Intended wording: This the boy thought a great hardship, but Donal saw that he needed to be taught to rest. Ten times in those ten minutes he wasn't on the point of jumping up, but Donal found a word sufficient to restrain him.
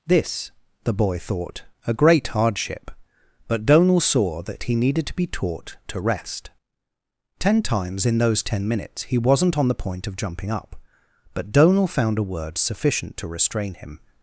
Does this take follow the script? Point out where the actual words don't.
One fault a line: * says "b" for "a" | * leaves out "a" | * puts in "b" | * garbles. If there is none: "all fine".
all fine